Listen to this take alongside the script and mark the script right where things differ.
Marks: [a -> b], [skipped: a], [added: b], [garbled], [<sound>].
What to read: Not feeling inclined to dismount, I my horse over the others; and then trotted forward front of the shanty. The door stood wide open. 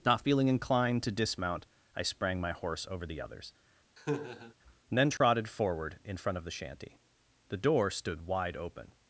Not feeling inclined to dismount, I [added: sprang] my horse over the others; [laugh] and then trotted [dropout] forward [added: in] front of the shanty. The door stood wide open.